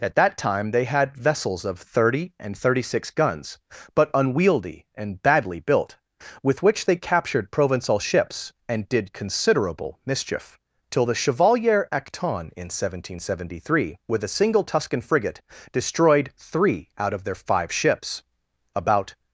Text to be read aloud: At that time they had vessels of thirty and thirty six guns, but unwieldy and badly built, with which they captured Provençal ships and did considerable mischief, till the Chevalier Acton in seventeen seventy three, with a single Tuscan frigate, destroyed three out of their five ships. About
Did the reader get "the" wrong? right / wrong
right